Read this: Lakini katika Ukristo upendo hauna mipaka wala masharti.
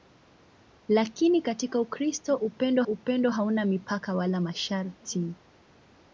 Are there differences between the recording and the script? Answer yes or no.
yes